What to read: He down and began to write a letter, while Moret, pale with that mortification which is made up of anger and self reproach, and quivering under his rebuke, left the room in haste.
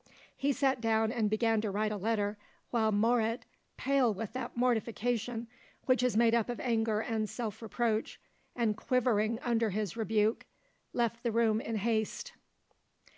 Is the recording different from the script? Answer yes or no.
yes